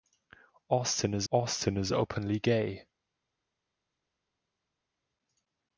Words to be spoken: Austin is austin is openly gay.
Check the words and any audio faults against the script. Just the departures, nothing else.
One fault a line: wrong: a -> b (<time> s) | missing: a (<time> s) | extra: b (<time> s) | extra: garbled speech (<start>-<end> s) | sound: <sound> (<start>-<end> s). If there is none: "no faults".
no faults